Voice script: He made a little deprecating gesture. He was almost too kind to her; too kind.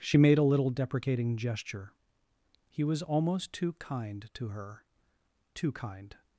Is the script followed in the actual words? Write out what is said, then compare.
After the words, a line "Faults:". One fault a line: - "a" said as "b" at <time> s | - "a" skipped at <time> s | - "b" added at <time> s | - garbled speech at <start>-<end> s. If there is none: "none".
She made a little deprecating gesture. He was almost too kind to her; too kind.
Faults:
- "He" said as "She" at 0.0 s